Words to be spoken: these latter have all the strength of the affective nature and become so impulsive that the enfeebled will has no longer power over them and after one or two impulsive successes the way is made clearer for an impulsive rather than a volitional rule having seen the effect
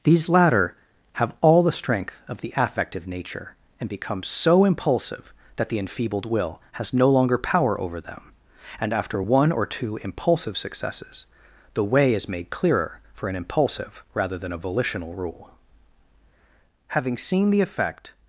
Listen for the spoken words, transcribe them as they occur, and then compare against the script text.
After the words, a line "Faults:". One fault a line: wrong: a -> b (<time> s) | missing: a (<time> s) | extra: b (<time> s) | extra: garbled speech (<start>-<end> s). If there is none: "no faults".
these latter have all the strength of the affective nature and become so impulsive that the enfeebled will has no longer power over them and after one or two impulsive successes the way is made clearer for an impulsive rather than a volitional rule having seen the effect
Faults:
no faults